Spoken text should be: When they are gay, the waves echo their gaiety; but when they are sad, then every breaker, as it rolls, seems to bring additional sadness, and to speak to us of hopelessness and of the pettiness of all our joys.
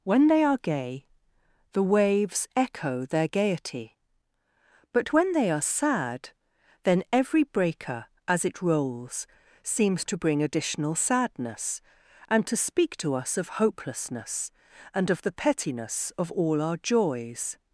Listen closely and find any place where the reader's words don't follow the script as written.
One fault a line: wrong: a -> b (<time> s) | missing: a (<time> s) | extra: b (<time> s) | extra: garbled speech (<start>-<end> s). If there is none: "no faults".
no faults